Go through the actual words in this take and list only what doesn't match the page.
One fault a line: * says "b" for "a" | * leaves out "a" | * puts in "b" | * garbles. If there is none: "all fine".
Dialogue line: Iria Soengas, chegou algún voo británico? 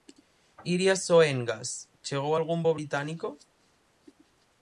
all fine